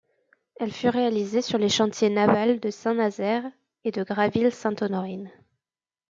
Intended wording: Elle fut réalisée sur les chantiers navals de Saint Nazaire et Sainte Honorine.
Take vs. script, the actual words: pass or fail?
fail